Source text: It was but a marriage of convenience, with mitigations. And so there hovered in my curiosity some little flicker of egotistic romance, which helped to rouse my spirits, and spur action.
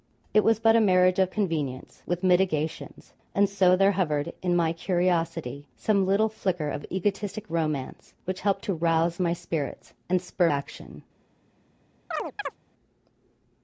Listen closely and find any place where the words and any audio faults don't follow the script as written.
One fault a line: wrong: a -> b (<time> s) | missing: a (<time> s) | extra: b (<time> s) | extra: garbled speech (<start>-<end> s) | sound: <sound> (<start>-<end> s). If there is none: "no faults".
sound: chirp (12.1-12.6 s)